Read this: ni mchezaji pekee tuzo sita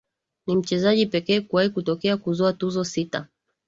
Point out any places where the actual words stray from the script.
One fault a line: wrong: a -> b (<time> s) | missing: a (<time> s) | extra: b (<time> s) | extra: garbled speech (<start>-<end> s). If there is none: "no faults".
extra: kuwahi kutokea kuzoa (1.4 s)